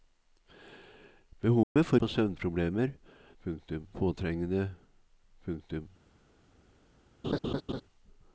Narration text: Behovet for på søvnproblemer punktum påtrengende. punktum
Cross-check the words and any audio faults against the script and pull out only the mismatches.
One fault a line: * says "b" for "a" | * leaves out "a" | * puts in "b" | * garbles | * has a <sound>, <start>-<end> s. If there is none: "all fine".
* has a dropout, 1.6-1.8 s
* has a laugh, 7.2-7.8 s